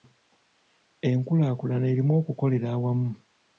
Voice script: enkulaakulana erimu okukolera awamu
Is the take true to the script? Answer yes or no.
yes